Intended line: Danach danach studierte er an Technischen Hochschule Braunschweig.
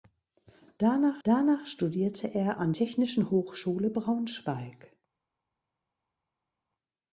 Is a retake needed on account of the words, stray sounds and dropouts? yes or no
no